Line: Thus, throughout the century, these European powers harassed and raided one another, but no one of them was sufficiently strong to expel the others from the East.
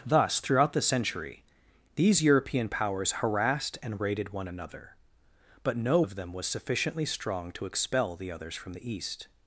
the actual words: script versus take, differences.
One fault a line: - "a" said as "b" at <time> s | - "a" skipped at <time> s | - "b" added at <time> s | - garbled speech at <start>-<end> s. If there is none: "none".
- "one" skipped at 6.0 s